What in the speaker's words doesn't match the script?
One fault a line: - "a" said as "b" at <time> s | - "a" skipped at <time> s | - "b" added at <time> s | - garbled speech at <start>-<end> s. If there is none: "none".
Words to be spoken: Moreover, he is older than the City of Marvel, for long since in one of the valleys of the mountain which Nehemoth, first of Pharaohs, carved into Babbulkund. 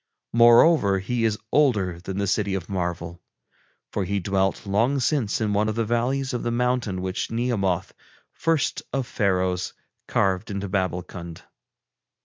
- "he dwelt" added at 4.0 s